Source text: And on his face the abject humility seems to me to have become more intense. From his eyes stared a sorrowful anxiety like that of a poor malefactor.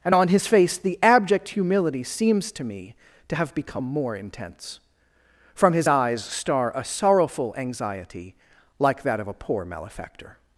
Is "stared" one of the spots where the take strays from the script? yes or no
yes